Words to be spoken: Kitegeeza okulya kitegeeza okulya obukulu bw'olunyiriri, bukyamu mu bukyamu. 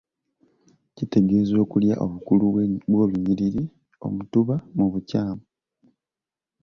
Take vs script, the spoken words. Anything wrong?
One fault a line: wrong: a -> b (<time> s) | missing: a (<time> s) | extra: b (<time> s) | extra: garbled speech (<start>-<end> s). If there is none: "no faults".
missing: kitegeeza okulya (1.9 s)
wrong: bukyamu -> omutuba (4.1 s)